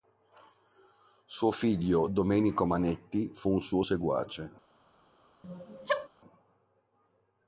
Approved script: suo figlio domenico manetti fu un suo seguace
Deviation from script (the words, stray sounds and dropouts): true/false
true